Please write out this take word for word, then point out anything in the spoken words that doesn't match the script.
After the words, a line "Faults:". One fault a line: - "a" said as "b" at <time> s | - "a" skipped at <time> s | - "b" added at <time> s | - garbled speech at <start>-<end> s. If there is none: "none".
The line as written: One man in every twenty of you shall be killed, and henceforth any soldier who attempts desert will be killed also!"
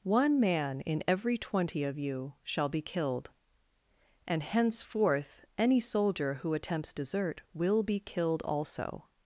One man in every twenty of you shall be killed, and henceforth any soldier who attempts desert will be killed also!"
Faults:
none